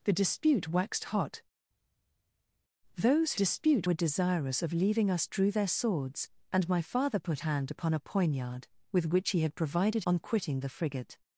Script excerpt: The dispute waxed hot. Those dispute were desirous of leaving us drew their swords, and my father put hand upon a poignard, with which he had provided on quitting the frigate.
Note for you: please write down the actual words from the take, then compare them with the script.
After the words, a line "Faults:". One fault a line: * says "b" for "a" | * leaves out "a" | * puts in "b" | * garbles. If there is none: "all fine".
The dispute waxed hot. Those dispute were desirous of leaving us drew their swords, and my father put hand upon a poignard, with which he had provided on quitting the frigate.
Faults:
all fine